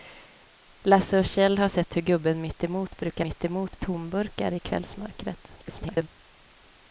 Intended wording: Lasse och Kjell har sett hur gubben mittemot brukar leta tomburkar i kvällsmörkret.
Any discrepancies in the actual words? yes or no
yes